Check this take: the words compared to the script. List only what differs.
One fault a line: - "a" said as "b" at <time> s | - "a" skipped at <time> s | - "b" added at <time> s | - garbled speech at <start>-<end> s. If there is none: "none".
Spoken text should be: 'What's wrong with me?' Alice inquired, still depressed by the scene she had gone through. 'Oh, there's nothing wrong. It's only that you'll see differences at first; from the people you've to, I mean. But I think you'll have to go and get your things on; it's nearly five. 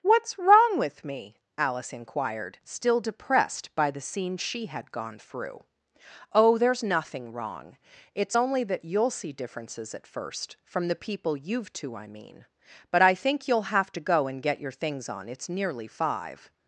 none